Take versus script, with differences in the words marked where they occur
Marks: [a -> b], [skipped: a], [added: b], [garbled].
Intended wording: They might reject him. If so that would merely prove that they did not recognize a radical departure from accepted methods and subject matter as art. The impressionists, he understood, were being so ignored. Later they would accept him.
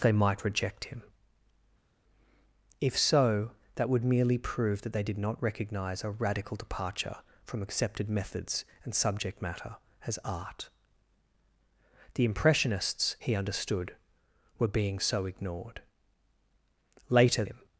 They might reject him. If so that would merely prove that they did not recognize a radical departure from accepted methods and subject matter as art. The impressionists, he understood, were being so ignored. Later [skipped: they would accept] him.